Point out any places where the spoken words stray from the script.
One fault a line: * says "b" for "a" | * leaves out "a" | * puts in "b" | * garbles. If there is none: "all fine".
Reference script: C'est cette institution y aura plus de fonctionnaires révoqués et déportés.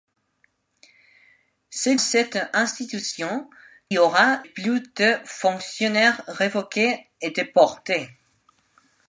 all fine